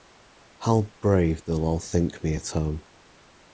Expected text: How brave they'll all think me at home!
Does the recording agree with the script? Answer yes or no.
yes